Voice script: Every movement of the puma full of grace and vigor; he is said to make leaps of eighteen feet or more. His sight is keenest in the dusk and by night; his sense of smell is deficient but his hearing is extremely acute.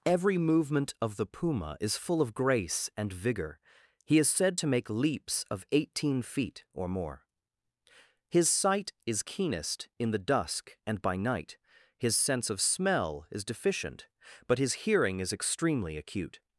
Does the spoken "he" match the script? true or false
true